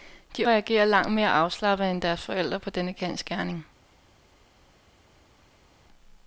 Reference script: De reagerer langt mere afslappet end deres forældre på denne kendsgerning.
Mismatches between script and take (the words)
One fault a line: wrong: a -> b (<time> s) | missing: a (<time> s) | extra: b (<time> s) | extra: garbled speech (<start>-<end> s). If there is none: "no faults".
no faults